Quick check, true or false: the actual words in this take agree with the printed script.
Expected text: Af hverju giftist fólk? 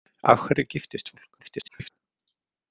false